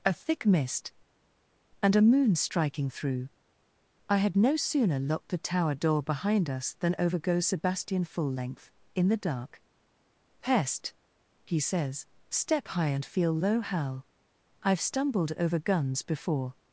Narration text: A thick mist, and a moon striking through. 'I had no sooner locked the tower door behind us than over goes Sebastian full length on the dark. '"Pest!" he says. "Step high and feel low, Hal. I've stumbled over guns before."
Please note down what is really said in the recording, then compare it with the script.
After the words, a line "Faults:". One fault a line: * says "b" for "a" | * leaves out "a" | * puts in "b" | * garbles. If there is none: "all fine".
A thick mist, and a moon striking through. 'I had no sooner locked the tower door behind us than over goes Sebastian full length in the dark. '"Pest!" he says. "Step high and feel low, Hal. I've stumbled over guns before."
Faults:
* says "in" for "on"